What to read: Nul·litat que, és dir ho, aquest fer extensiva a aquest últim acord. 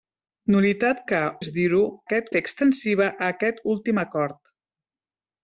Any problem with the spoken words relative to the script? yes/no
no